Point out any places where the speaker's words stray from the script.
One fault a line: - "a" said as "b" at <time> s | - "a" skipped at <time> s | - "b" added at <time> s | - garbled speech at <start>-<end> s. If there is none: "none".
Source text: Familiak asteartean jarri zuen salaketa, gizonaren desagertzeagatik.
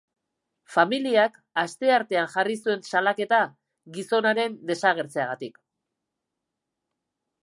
none